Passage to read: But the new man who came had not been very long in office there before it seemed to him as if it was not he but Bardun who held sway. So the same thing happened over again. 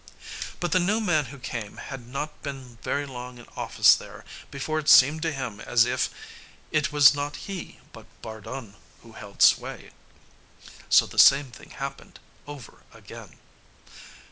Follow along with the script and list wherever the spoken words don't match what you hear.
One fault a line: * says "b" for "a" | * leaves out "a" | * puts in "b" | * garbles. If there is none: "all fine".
all fine